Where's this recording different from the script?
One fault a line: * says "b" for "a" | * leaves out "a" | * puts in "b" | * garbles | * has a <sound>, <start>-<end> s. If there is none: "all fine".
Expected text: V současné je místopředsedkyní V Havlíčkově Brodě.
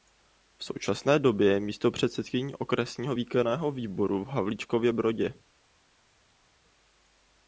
* puts in "době"
* puts in "Okresního výkonného výboru"